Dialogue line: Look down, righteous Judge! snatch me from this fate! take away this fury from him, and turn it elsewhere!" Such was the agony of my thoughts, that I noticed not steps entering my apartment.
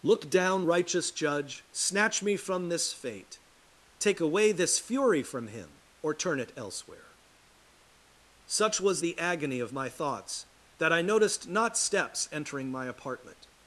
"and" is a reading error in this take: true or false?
true